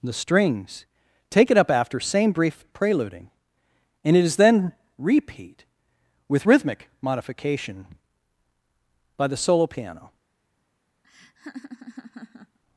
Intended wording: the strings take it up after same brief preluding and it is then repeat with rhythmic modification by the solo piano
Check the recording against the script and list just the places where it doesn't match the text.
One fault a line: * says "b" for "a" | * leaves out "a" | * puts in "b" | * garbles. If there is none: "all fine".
all fine